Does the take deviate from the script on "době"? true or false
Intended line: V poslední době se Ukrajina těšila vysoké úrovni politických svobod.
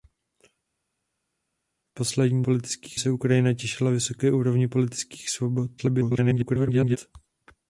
true